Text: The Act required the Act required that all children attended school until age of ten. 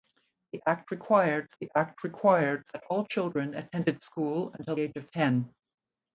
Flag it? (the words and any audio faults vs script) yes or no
no